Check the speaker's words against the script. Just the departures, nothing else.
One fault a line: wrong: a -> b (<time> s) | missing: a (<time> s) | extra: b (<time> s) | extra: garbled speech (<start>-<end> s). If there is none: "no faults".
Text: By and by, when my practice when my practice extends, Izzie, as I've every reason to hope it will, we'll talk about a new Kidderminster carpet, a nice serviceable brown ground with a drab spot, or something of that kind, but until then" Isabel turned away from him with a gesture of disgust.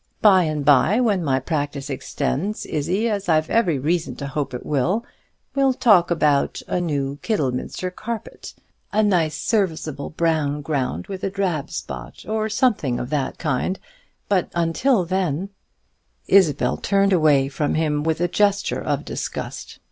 missing: when my practice (1.9 s)